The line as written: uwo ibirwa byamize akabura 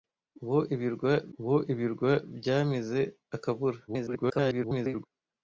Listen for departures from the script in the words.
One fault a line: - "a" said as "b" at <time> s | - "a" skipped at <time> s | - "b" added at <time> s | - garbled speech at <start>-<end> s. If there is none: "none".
- "uwo ibirwa" added at 1.4 s
- garbled speech at 3.9-5.1 s